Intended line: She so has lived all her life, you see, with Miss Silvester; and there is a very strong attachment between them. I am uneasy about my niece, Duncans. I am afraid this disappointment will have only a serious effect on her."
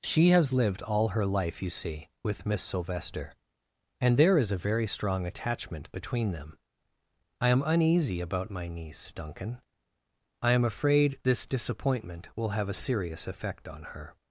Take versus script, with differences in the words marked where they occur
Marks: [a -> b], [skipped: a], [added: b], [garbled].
She [skipped: so] has lived all her life, you see, with Miss Silvester; and there is a very strong attachment between them. I am uneasy about my niece, [Duncans. -> Duncan] I am afraid this disappointment will have [skipped: only] a serious effect on her."